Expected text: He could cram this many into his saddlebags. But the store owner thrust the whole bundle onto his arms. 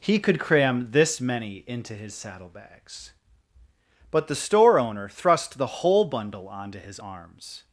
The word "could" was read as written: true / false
true